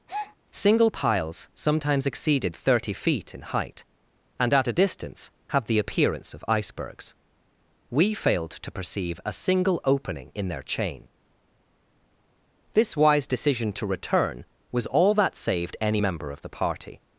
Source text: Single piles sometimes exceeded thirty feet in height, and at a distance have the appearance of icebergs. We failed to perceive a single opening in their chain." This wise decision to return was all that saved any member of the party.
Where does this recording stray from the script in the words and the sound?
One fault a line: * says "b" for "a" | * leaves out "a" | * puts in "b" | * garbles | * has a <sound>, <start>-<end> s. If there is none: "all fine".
* has a breath, 0.1-0.4 s